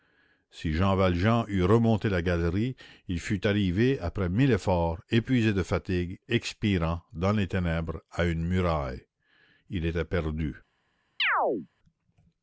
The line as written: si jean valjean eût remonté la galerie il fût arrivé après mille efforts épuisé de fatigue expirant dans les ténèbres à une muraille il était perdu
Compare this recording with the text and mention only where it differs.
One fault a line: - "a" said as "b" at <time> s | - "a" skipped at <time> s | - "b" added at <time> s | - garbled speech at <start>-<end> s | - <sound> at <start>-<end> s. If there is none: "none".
- chirp at 11.2-11.7 s